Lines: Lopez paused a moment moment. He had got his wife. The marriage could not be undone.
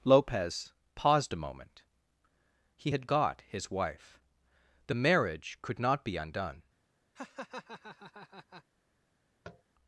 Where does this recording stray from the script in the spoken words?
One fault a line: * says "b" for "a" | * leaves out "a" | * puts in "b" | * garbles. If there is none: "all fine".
* leaves out "moment"